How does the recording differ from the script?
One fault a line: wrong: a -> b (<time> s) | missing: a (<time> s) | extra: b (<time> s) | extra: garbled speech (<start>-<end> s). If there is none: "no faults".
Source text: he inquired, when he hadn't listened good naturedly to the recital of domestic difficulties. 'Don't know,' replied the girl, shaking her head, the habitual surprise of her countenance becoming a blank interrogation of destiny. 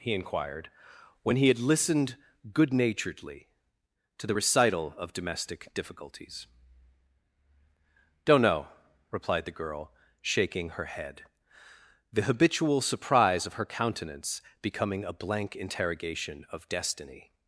wrong: hadn't -> had (1.5 s)